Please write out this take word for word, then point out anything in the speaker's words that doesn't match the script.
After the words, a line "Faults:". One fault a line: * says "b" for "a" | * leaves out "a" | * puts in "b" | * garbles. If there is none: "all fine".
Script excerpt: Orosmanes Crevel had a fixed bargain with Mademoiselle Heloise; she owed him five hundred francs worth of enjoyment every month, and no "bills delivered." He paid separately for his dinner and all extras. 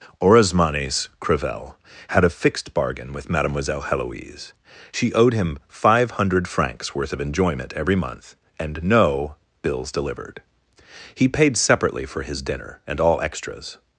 Orosmanes Crevel had a fixed bargain with Mademoiselle Heloise; she owed him five hundred francs worth of enjoyment every month, and no "bills delivered." He paid separately for his dinner and all extras.
Faults:
all fine